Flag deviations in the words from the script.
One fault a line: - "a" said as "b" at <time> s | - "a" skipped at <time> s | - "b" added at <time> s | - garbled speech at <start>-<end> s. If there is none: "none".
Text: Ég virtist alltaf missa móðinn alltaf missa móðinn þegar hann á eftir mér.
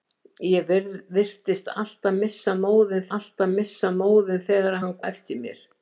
none